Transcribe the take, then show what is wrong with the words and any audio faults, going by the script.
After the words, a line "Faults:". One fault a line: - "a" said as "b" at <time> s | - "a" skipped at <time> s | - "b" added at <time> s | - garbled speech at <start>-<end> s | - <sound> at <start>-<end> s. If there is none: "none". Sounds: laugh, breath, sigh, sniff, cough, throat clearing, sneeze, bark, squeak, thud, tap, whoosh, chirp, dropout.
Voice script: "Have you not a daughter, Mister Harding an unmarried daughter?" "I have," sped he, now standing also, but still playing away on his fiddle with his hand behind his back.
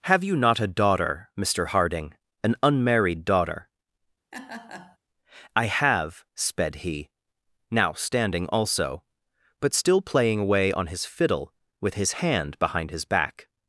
"Have you not a daughter, Mister Harding an unmarried daughter?" "I have," sped he, now standing also, but still playing away on his fiddle with his hand behind his back.
Faults:
- laugh at 4.3-5.0 s